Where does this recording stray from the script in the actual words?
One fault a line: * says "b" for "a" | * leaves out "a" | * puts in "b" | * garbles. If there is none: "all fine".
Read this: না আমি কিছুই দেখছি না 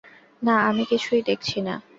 all fine